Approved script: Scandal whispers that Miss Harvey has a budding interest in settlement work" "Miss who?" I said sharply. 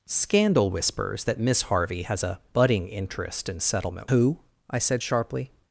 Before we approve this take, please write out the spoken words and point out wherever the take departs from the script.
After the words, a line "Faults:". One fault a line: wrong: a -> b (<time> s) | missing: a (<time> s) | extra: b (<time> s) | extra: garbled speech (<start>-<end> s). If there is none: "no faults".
Scandal whispers that Miss Harvey has a budding interest in settlement who?" I said sharply.
Faults:
missing: work Miss (4.1 s)